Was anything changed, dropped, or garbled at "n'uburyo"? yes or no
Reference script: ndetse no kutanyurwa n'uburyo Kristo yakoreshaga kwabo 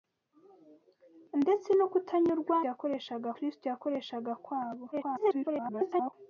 yes